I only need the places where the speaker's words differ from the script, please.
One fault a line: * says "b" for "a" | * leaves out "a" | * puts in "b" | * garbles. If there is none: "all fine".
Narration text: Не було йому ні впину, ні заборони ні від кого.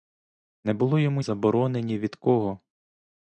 * leaves out "ні впину ні"